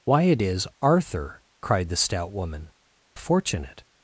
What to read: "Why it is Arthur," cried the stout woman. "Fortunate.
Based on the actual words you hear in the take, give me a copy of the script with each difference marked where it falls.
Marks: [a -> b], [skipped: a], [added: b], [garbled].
"Why it is Arthur," cried the stout woman. "Fortunate.